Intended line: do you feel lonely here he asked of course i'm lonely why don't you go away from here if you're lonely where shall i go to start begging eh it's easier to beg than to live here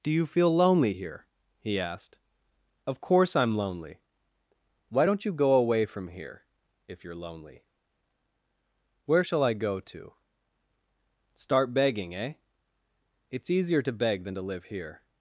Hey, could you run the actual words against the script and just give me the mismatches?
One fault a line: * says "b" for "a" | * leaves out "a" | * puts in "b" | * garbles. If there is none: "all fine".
all fine